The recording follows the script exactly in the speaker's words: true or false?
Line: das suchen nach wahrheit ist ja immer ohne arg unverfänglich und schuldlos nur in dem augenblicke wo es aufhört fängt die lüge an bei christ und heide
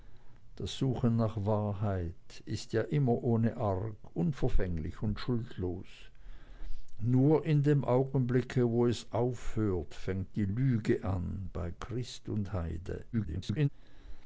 false